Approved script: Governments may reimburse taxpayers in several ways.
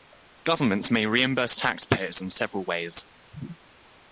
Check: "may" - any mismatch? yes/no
no